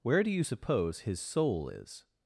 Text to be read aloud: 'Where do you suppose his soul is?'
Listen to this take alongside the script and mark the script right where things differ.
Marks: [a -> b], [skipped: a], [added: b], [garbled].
'Where do you suppose his soul is?'